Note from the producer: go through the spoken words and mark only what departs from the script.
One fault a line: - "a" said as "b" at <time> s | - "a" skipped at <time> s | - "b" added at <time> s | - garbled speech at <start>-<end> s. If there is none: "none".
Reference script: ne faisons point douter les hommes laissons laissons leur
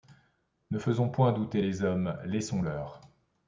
- "laissons" skipped at 2.6 s